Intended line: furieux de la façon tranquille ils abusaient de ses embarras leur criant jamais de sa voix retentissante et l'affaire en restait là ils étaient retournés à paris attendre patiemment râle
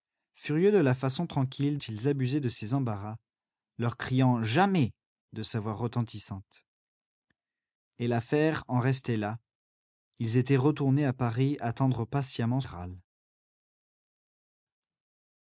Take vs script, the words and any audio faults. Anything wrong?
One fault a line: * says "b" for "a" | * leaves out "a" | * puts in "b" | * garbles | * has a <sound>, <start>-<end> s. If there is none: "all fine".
all fine